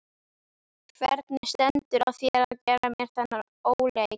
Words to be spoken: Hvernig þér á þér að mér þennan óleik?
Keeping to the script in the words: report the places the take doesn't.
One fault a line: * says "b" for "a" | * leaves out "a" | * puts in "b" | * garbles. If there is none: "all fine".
* says "stendur" for "þér"
* puts in "gera"